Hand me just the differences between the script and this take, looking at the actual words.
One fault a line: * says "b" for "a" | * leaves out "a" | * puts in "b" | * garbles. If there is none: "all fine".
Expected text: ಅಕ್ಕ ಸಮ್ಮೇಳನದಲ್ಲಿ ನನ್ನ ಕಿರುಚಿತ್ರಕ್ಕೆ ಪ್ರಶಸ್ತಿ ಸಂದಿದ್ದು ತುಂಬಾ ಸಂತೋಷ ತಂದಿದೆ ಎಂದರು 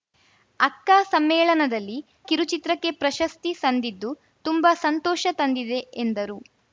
* leaves out "ನನ್ನ"